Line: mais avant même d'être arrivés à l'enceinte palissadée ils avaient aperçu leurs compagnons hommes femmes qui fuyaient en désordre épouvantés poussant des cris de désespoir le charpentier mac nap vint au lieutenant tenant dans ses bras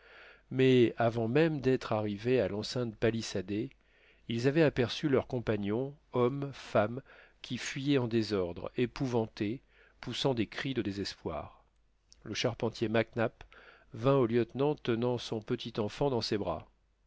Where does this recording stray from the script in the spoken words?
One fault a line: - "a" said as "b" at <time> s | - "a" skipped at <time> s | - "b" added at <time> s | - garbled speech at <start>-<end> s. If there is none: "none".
- "son petit enfant" added at 15.2 s